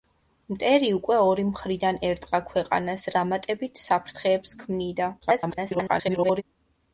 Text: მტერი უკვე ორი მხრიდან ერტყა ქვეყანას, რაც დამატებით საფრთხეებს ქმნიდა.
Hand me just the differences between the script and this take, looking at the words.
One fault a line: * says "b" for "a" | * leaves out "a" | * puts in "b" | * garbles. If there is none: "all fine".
* leaves out "რაც"
* garbles